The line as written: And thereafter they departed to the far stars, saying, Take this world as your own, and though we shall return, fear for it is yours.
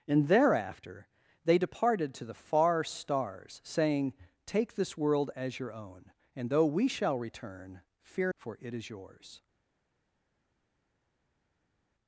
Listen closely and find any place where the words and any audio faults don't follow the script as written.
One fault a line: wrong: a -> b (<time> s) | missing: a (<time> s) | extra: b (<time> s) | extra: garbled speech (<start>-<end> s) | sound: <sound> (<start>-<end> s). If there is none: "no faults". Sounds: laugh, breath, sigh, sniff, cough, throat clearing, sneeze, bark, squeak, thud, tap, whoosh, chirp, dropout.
no faults